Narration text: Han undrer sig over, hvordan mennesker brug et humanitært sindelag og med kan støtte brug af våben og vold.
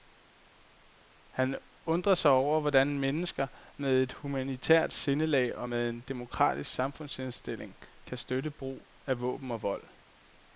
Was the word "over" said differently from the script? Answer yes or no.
no